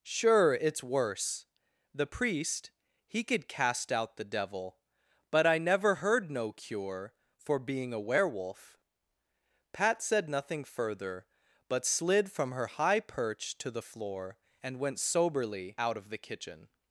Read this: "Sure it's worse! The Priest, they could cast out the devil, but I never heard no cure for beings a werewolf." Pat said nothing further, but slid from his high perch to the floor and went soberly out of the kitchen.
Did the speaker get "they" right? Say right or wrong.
wrong